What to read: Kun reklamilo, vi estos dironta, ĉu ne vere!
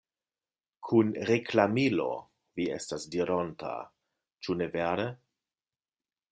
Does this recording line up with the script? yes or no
no